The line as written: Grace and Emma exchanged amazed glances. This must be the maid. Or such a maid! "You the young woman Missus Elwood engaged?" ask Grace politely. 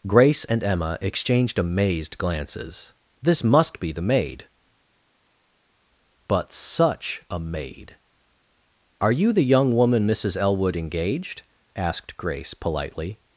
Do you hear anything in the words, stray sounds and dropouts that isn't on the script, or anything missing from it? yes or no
yes